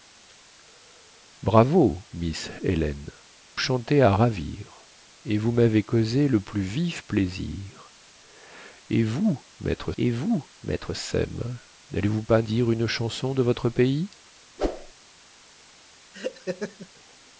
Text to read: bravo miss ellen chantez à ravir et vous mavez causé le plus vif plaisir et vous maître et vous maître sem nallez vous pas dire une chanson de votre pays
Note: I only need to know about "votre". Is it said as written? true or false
true